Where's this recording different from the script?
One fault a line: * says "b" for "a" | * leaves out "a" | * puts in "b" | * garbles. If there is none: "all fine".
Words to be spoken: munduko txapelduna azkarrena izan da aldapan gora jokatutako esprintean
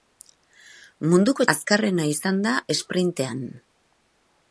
* leaves out "txapelduna"
* leaves out "aldapan gora jokatutako"